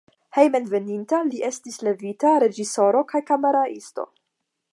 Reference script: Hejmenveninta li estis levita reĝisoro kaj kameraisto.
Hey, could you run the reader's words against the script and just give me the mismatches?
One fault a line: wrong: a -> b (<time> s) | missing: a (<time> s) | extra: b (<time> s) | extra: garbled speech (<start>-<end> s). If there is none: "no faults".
no faults